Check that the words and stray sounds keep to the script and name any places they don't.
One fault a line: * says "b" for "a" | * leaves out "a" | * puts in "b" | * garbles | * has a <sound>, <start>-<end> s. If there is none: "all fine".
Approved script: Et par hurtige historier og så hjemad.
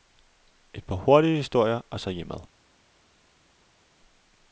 all fine